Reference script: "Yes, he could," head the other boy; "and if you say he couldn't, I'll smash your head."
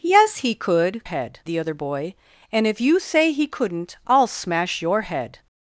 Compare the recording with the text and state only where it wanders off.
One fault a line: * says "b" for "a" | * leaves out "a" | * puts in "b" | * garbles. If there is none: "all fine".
all fine